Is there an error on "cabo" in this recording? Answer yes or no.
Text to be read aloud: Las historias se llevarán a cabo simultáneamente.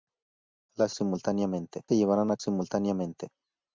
yes